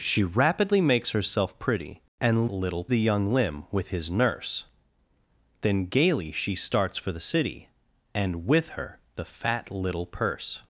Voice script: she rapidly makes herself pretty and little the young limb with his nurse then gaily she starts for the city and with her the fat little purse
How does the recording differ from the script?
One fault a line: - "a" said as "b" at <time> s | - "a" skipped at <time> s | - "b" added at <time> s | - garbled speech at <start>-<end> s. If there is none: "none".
none